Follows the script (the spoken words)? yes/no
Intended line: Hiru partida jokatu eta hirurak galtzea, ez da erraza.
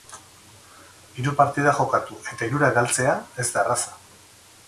yes